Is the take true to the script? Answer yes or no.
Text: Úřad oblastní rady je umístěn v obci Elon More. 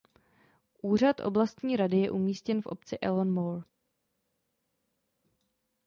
yes